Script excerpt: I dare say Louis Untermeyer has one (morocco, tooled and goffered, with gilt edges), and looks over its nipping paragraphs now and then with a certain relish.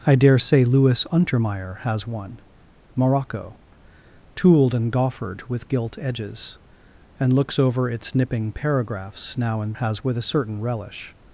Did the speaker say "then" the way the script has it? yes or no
no